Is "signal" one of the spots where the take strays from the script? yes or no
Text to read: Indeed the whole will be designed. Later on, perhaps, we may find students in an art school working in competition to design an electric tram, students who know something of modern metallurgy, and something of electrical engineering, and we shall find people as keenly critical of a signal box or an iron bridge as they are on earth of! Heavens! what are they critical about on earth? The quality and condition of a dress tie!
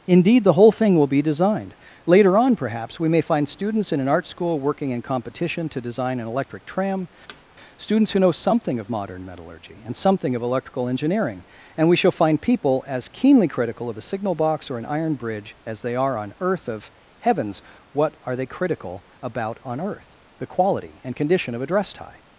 no